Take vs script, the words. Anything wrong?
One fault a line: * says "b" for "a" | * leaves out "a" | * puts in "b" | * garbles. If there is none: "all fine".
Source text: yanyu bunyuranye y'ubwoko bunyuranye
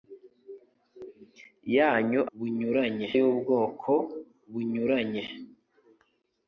all fine